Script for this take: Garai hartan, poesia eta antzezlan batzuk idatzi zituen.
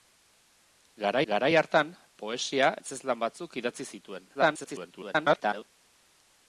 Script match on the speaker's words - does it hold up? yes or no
no